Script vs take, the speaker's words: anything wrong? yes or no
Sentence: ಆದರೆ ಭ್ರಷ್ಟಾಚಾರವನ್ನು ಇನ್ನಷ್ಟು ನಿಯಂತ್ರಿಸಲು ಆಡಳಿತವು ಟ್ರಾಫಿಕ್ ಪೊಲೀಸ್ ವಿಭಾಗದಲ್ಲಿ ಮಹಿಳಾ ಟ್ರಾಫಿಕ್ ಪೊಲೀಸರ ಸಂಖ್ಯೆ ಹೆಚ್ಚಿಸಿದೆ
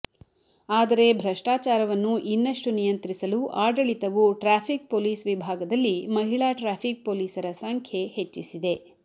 no